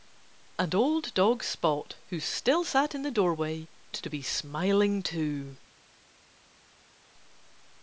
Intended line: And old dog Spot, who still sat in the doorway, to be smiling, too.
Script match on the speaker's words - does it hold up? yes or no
yes